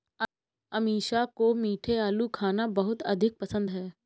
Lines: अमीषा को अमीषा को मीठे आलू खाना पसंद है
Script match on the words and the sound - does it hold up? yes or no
no